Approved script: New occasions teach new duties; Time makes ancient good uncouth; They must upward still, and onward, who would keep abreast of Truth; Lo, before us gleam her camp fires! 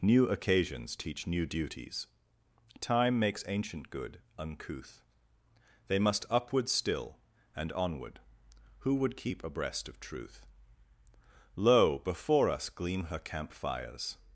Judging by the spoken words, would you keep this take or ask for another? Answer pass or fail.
pass